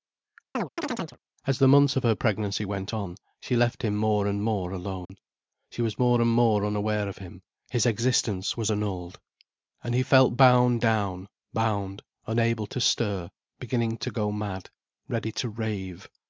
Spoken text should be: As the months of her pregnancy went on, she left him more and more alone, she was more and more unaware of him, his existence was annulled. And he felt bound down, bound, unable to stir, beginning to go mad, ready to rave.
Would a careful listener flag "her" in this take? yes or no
no